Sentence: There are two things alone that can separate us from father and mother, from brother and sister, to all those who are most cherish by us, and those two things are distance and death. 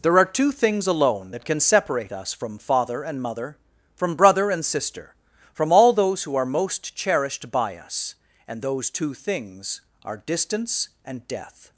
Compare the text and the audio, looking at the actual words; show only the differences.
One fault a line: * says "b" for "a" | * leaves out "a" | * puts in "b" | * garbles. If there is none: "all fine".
* says "from" for "to"
* says "cherished" for "cherish"